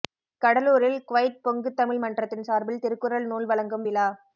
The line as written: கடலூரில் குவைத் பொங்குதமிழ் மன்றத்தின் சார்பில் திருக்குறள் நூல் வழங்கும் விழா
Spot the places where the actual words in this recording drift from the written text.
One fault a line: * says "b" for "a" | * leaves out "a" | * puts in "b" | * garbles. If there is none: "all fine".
all fine